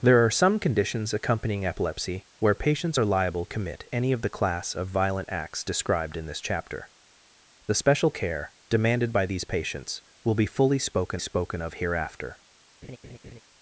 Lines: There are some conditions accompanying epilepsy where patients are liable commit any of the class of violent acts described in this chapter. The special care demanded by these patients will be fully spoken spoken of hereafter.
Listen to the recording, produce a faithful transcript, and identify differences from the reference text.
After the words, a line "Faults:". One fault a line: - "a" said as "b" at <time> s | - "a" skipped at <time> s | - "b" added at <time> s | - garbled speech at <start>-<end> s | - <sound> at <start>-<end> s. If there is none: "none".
There are some conditions accompanying epilepsy where patients are liable commit any of the class of violent acts described in this chapter. The special care demanded by these patients will be fully spoken spoken of hereafter.
Faults:
- laugh at 12.8-13.4 s